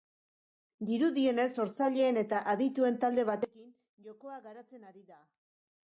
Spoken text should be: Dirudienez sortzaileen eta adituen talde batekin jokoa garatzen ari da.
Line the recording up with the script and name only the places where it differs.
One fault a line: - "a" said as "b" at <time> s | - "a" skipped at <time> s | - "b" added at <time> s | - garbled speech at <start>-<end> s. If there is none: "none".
none